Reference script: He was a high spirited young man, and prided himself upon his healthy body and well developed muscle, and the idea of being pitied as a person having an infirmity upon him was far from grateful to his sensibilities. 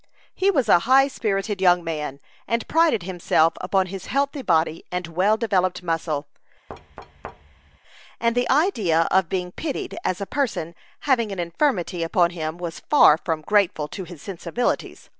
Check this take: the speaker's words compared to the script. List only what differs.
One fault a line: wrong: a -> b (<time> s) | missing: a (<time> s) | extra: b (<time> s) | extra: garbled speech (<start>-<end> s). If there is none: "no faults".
no faults